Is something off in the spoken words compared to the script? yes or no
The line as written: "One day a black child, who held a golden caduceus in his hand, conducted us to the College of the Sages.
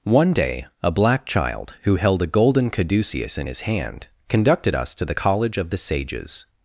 no